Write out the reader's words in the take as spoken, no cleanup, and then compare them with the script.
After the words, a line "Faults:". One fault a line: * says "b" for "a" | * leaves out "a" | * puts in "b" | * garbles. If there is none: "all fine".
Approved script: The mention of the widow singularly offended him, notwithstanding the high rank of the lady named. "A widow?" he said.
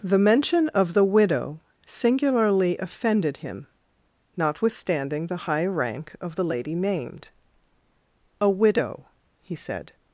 The mention of the widow singularly offended him, notwithstanding the high rank of the lady named. "A widow?" he said.
Faults:
all fine